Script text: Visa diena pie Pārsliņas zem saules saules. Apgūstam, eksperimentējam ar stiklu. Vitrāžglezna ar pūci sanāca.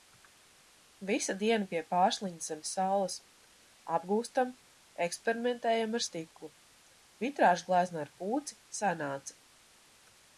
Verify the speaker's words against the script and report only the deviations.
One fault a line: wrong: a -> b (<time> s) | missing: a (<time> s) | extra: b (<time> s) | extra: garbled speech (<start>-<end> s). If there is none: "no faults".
missing: saules (3.2 s)